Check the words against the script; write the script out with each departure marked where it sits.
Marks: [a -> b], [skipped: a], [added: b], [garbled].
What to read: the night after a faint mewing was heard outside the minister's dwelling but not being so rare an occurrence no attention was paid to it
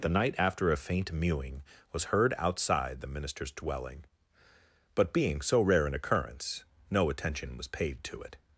the night after a faint mewing was heard outside the minister's dwelling but [skipped: not] being so rare an occurrence no attention was paid to it